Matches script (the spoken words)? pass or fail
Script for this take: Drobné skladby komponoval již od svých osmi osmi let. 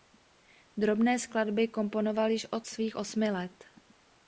fail